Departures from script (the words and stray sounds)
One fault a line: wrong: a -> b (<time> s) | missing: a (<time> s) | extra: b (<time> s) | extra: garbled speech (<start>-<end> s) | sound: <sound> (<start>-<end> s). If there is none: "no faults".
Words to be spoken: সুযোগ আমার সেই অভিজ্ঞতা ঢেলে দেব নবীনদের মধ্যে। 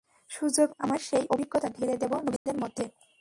sound: dropout (2.4-2.5 s)